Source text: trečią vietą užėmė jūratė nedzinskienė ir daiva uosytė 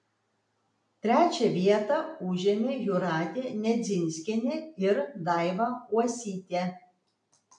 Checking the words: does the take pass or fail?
pass